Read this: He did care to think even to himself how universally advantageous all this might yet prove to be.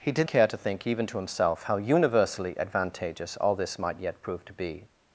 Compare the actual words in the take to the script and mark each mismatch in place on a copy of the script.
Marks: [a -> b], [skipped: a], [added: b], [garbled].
He did care to think even to himself how universally advantageous all this might yet prove to be.